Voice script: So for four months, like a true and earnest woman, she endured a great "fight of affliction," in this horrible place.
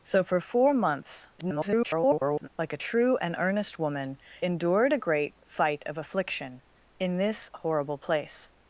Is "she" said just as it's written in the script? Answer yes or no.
no